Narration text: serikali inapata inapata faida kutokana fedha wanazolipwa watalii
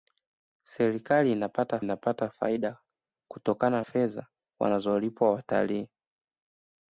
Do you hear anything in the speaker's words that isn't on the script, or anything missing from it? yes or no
no